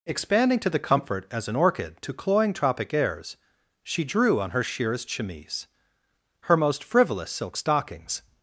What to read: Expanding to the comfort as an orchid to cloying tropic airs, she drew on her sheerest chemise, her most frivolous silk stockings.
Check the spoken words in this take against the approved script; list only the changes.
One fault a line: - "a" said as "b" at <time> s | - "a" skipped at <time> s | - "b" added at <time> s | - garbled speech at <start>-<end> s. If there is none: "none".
none